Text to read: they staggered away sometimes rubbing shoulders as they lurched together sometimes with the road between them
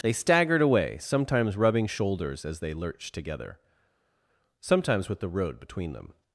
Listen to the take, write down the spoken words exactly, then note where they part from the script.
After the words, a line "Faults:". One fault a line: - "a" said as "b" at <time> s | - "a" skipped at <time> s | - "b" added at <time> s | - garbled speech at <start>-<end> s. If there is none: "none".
they staggered away sometimes rubbing shoulders as they lurched together sometimes with the road between them
Faults:
none